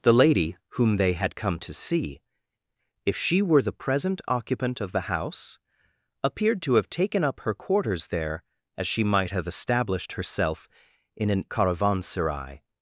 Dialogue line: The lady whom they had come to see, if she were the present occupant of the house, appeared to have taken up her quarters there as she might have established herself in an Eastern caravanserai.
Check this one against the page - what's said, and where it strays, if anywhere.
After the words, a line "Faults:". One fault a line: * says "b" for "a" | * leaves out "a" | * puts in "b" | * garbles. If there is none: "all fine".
The lady whom they had come to see, if she were the present occupant of the house, appeared to have taken up her quarters there as she might have established herself in an Caravanserai.
Faults:
* leaves out "Eastern"